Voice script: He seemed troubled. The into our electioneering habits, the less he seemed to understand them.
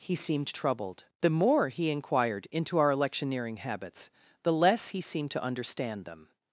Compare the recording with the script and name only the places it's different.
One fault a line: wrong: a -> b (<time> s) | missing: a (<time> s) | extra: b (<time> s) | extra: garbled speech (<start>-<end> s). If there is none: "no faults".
extra: more he inquired (1.3 s)